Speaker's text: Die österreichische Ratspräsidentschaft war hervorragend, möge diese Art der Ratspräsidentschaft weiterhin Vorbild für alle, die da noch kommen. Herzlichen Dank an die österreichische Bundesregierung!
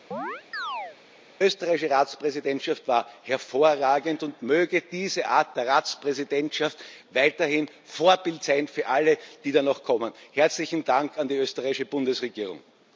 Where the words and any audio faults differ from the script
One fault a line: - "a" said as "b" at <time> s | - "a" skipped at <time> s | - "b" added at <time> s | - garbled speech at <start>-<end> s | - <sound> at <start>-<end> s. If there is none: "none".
- chirp at 0.1-1.0 s
- "und" added at 4.2 s
- "sein" added at 8.4 s